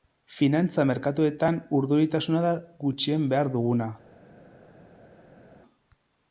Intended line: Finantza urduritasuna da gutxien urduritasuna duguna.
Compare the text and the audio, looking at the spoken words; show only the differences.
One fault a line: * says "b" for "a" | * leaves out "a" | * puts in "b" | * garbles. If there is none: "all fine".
* puts in "merkatuetan"
* says "behar" for "urduritasuna"